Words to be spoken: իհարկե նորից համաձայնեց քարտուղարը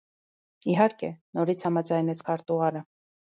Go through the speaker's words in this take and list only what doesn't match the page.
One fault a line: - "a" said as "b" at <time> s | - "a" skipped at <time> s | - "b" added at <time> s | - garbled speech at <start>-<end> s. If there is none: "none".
none